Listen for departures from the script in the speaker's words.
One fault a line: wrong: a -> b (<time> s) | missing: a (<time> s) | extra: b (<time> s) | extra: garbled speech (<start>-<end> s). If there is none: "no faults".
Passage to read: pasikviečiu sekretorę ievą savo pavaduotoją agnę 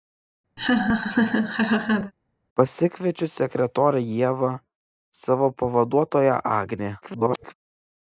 extra: garbled speech (7.0-7.5 s)